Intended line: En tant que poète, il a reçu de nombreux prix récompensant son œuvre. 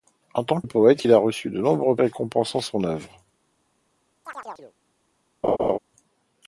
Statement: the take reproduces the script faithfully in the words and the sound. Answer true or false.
false